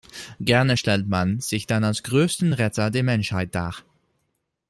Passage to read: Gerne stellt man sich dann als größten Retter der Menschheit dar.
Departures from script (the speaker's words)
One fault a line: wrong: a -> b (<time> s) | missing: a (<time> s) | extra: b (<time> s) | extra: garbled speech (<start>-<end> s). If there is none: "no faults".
no faults